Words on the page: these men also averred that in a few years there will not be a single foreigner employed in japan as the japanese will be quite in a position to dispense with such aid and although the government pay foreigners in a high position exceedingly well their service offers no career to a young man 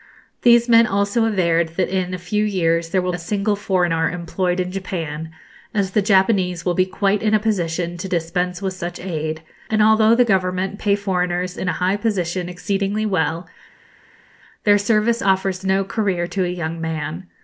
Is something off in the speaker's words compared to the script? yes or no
yes